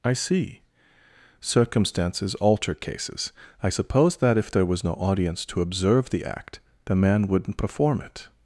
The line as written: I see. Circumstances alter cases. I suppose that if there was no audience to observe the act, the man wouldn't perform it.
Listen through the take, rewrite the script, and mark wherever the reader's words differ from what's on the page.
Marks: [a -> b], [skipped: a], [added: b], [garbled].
I see. Circumstances alter cases. I suppose that if there was no audience to observe the act, the man wouldn't perform it.